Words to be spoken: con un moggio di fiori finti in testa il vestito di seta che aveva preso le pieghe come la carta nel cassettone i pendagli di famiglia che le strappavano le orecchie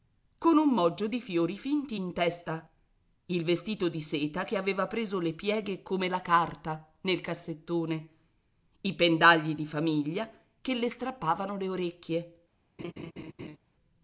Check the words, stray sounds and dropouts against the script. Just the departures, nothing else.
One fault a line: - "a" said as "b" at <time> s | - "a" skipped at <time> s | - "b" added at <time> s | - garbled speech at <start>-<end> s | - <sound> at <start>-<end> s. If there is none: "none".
- laugh at 12.8-13.6 s